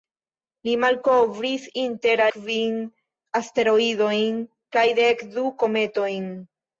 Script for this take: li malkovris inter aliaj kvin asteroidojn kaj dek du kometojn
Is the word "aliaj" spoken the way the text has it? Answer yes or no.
no